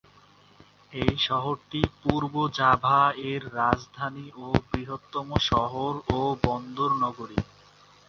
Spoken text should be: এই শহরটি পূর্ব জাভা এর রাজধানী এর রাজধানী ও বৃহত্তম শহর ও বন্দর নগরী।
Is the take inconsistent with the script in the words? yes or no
yes